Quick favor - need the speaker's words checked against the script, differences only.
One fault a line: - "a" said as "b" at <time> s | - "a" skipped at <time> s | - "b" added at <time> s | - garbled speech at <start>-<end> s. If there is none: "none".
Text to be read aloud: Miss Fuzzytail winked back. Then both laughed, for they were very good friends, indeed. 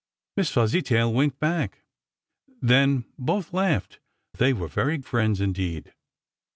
- "for" skipped at 4.0 s
- "good" skipped at 5.0 s